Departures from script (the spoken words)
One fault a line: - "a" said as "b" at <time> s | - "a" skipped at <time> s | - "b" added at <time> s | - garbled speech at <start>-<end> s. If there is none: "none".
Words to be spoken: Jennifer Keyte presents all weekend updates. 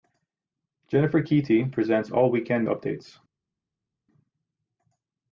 none